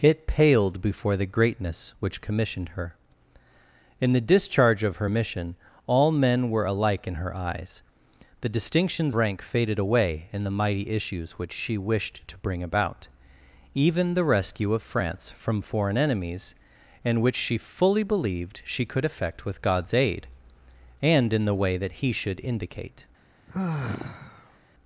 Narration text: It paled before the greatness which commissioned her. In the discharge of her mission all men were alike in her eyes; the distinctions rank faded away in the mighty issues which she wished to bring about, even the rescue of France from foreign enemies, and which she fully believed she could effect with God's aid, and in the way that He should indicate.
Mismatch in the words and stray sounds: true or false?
true